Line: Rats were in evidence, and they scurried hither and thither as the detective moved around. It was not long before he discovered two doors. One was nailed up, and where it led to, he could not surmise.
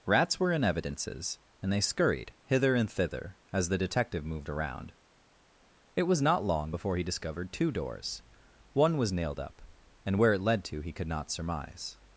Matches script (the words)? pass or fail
fail